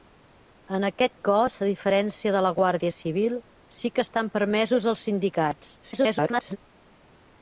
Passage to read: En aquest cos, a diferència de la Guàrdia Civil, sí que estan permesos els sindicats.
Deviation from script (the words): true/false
true